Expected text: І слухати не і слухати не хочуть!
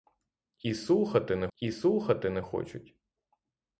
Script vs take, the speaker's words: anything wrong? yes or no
no